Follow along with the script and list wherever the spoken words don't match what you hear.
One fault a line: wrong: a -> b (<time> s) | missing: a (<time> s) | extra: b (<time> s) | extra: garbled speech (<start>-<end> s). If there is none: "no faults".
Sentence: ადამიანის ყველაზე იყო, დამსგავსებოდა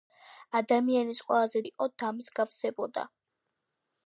no faults